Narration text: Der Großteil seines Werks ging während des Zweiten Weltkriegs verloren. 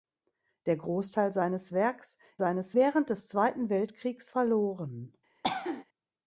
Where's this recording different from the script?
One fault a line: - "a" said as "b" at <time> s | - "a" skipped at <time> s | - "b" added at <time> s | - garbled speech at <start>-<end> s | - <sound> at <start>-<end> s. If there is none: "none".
- "ging" said as "seines" at 2.4 s
- cough at 5.4-5.8 s